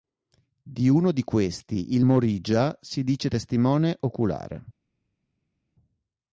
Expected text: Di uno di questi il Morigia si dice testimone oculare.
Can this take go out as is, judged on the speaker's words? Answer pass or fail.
pass